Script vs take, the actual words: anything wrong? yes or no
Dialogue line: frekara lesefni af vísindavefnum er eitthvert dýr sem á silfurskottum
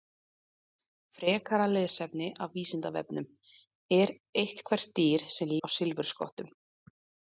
no